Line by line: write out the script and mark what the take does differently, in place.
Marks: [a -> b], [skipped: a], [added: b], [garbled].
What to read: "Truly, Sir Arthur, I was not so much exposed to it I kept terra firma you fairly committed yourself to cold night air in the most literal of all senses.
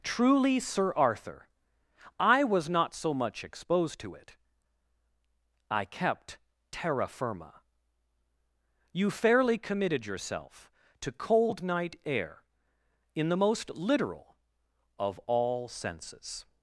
"Truly, Sir Arthur, I was not so much exposed to it I kept terra firma you fairly committed yourself to cold night air in the most literal of all senses.